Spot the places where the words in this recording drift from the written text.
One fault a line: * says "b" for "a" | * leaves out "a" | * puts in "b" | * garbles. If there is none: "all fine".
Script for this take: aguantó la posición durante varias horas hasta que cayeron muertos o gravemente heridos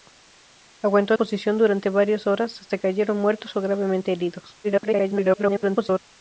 * leaves out "la"
* leaves out "que"
* garbles